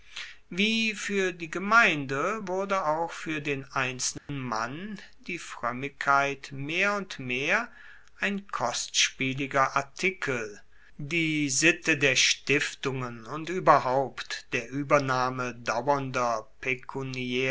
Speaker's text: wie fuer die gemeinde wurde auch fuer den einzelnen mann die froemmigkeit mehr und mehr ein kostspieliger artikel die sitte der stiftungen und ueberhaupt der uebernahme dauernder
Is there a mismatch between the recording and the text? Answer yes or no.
no